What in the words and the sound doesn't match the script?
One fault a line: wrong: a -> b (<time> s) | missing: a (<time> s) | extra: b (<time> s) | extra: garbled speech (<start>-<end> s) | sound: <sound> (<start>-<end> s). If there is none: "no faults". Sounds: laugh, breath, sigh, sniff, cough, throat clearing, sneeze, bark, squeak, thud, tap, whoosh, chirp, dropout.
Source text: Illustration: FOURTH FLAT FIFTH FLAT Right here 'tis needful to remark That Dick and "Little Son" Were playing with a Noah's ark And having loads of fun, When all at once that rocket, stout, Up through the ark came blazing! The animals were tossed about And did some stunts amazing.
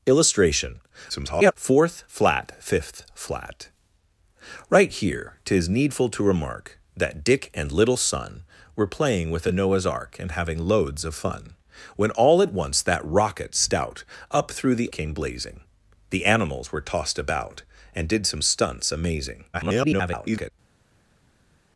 extra: garbled speech (1.1-1.5 s)
missing: ark (14.9 s)
extra: garbled speech (19.5-20.5 s)